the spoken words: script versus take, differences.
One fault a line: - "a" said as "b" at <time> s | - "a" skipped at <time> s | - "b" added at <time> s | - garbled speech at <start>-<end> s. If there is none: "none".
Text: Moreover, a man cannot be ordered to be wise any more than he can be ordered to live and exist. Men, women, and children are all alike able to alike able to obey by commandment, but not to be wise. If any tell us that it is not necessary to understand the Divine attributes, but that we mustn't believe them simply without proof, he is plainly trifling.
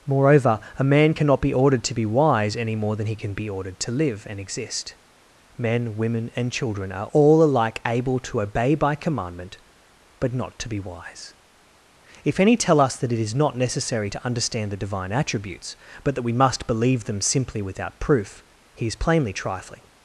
- "alike able to" skipped at 8.4 s
- "mustn't" said as "must" at 16.3 s